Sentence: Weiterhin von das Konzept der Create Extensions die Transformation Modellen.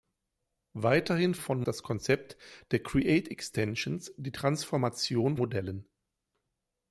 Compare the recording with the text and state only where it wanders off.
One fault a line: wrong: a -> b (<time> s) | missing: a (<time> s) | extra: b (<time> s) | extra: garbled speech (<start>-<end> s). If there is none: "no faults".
no faults